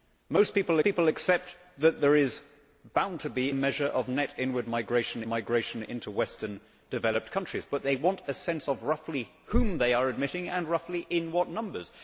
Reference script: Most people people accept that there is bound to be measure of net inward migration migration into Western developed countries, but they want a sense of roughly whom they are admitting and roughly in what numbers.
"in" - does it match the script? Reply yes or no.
yes